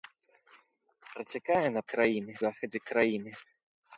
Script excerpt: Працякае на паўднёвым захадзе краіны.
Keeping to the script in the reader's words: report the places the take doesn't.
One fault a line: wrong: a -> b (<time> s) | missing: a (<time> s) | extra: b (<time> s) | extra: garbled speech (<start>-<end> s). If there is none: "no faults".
wrong: паўднёвым -> краіны (2.0 s)